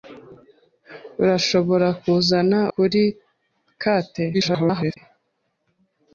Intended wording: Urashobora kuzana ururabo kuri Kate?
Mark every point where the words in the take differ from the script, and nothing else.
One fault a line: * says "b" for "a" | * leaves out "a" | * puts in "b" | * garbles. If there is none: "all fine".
* leaves out "ururabo"
* garbles